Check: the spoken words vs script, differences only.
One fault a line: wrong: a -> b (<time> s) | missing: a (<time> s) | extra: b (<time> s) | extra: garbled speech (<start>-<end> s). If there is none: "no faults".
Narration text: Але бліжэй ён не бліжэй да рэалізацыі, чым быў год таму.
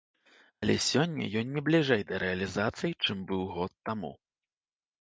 wrong: бліжэй -> сёння (0.8 s)